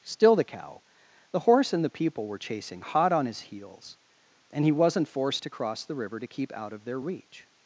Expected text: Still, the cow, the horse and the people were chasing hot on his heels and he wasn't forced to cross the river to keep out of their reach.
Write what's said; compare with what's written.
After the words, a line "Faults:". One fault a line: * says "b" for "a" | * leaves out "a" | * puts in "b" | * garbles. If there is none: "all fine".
Still, the cow, the horse and the people were chasing hot on his heels and he wasn't forced to cross the river to keep out of their reach.
Faults:
all fine